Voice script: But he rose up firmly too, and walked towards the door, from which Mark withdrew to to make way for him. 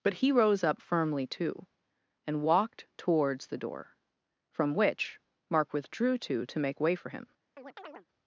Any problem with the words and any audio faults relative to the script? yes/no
yes